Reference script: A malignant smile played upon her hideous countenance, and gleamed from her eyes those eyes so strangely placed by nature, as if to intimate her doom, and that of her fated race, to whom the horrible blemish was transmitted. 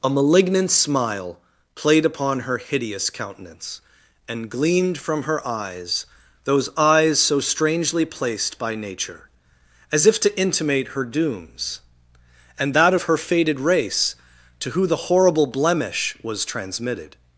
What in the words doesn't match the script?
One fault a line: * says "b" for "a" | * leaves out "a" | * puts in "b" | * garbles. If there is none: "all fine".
* says "dooms" for "doom"
* says "who" for "whom"